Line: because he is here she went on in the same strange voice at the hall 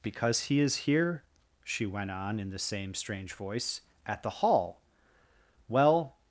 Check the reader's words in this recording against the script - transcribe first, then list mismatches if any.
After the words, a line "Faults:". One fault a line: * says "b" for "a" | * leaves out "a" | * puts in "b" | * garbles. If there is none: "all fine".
because he is here she went on in the same strange voice at the hall well
Faults:
* puts in "well"